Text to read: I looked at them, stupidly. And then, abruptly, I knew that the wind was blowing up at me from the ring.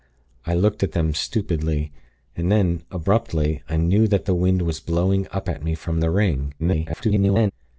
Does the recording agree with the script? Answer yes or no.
no